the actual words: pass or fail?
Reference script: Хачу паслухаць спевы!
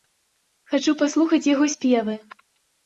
fail